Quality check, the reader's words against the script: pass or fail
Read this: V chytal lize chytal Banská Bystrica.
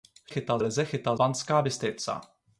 pass